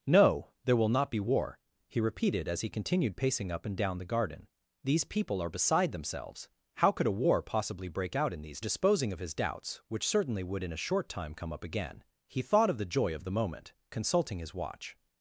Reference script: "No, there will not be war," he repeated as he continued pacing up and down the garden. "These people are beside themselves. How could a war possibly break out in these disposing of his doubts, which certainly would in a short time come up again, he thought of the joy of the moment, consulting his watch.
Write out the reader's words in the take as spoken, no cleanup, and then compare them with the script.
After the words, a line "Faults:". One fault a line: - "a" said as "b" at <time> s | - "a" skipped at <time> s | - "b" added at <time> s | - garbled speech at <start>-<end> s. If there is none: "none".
"No, there will not be war," he repeated as he continued pacing up and down the garden. "These people are beside themselves. How could a war possibly break out in these disposing of his doubts, which certainly would in a short time come up again, he thought of the joy of the moment, consulting his watch.
Faults:
none